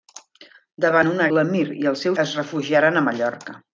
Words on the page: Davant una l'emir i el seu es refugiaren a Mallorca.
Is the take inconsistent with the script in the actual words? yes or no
no